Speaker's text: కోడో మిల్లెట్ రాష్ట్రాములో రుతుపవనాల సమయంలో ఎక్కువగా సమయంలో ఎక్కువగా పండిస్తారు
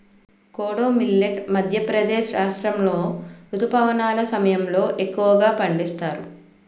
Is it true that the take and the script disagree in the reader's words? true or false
true